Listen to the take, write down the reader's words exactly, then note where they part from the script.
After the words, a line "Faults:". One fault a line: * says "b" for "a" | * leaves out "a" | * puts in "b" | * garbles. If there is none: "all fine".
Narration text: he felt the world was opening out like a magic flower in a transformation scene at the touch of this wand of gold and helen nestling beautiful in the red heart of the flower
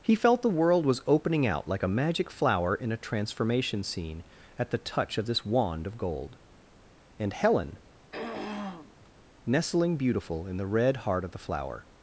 he felt the world was opening out like a magic flower in a transformation scene at the touch of this wand of gold and helen nestling beautiful in the red heart of the flower
Faults:
all fine